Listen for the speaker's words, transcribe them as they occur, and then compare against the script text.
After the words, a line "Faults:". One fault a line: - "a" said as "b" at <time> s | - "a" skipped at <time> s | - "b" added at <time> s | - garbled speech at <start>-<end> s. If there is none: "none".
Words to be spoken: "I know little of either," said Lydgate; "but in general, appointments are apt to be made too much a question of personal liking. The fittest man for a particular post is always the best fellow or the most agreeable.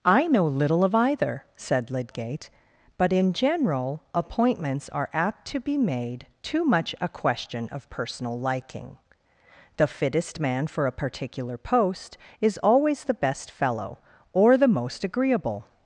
"I know little of either," said Lydgate; "but in general, appointments are apt to be made too much a question of personal liking. The fittest man for a particular post is always the best fellow or the most agreeable.
Faults:
none